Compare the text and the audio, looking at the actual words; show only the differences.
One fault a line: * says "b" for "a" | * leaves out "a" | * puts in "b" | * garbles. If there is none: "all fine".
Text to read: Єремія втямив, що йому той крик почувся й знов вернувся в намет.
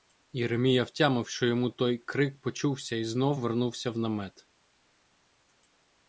all fine